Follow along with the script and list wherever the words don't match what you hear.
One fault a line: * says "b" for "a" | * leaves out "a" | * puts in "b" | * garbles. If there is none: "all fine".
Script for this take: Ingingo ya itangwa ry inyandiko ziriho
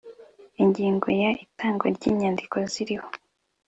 all fine